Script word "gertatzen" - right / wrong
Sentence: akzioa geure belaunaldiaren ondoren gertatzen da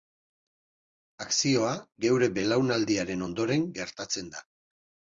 right